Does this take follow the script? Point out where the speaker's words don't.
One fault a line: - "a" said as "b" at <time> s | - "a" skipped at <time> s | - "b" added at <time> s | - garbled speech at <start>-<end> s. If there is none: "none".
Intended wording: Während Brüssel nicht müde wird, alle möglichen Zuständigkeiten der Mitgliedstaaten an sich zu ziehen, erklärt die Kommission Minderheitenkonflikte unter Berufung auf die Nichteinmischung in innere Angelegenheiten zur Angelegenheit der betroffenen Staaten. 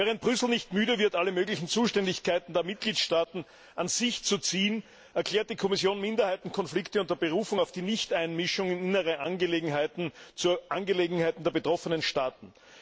none